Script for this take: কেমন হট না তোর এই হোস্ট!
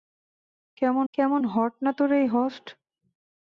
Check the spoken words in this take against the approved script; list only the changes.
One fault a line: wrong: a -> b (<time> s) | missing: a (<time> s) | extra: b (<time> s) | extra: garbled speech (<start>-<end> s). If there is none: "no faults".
extra: কেমন (1.1 s)